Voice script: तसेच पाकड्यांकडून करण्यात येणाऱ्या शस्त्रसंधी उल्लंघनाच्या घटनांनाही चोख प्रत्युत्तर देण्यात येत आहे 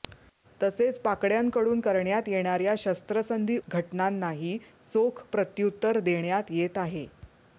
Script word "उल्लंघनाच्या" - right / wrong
wrong